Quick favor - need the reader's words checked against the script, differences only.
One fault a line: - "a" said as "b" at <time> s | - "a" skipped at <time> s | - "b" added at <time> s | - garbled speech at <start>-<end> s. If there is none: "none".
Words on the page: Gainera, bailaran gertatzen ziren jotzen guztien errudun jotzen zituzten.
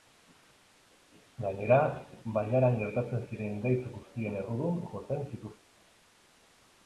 - "jotzen" said as "gaitz" at 3.7 s